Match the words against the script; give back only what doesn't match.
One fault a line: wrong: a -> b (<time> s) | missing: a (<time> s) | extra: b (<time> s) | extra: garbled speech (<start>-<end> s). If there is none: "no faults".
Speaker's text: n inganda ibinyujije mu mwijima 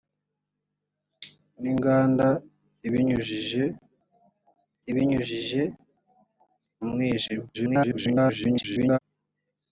extra: ibinyujije (4.9 s)
extra: garbled speech (7.5-9.0 s)